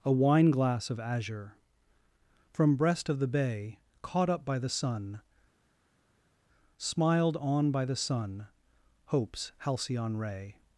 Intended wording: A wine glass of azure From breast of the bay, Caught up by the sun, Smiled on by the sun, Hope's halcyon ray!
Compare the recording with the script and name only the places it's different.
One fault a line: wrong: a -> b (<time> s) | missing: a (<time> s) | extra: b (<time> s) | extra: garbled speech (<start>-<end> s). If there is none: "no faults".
no faults